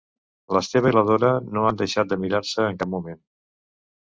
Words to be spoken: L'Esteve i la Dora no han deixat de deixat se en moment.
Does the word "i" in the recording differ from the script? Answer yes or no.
no